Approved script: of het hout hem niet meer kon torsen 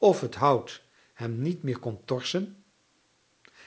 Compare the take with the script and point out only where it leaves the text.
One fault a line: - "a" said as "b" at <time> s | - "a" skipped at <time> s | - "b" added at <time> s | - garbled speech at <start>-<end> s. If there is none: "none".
none